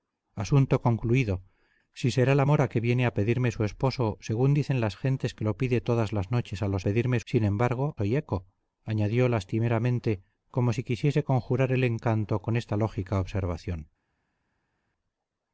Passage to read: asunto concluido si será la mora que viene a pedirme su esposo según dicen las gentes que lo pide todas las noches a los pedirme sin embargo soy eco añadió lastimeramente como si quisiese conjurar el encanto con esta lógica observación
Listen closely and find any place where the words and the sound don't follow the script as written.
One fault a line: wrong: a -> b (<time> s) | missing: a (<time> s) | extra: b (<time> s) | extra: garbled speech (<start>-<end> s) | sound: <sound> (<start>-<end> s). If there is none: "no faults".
no faults